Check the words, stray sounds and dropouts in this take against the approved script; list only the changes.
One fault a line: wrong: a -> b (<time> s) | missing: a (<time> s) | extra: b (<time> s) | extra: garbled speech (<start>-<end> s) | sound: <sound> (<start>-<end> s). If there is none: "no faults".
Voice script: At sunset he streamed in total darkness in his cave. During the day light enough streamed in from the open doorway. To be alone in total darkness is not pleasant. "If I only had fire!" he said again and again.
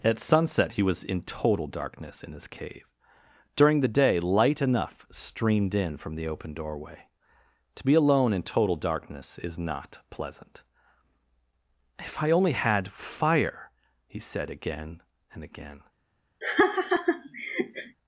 wrong: streamed -> was (0.8 s)
sound: laugh (16.4-18.0 s)